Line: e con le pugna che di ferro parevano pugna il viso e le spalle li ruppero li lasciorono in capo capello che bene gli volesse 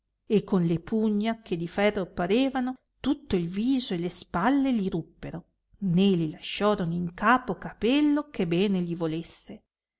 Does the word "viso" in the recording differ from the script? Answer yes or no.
no